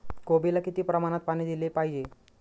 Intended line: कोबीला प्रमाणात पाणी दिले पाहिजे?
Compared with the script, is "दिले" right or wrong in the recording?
right